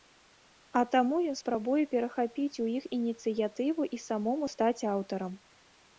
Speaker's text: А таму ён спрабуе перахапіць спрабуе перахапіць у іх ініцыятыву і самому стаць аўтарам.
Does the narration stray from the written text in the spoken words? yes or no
yes